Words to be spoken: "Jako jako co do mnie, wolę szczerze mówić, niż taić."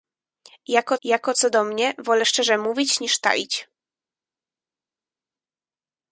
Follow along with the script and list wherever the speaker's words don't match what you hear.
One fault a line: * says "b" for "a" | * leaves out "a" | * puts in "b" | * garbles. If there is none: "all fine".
all fine